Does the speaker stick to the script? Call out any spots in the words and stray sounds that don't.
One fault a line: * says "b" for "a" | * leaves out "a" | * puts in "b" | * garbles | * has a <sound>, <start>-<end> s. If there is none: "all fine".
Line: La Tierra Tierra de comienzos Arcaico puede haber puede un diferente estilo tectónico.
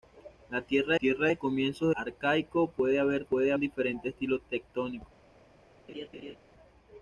* has a laugh, 5.9-6.4 s